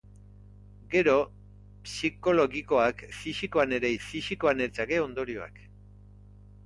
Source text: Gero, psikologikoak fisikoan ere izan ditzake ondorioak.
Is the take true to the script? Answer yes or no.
no